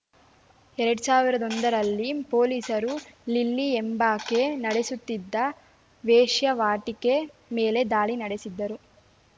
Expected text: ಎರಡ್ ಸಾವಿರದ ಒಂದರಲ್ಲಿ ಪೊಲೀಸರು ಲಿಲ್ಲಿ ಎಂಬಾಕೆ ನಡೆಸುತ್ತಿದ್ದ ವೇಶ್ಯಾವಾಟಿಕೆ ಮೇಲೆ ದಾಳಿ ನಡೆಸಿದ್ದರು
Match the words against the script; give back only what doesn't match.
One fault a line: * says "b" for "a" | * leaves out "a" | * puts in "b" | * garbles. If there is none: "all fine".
all fine